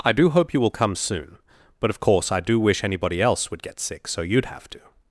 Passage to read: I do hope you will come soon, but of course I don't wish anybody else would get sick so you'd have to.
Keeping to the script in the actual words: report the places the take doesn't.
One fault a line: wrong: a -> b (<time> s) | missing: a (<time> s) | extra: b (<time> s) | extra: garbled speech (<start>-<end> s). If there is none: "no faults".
wrong: don't -> do (2.4 s)